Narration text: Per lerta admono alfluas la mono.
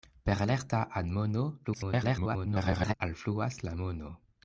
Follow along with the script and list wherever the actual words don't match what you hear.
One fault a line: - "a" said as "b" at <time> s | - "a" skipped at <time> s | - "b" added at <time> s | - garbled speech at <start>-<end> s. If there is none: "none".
- garbled speech at 1.6-2.9 s